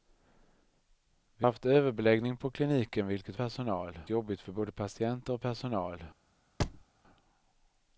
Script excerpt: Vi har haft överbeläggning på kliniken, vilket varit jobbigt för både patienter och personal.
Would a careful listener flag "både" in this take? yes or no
no